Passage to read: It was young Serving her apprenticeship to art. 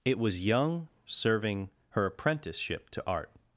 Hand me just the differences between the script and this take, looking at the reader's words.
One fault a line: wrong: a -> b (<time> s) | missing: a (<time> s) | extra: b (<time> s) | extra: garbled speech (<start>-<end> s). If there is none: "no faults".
no faults